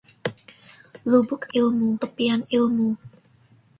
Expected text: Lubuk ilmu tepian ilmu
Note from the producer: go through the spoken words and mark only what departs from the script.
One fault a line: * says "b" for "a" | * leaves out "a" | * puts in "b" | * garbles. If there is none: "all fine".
all fine